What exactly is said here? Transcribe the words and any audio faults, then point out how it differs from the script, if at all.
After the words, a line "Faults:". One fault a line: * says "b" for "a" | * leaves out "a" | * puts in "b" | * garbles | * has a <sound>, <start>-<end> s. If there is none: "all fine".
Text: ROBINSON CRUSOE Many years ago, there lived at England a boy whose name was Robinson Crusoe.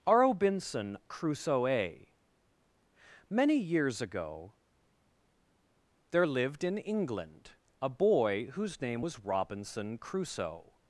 ROBINSON CRUSOE Many years ago, there lived in England a boy whose name was Robinson Crusoe.
Faults:
* says "in" for "at"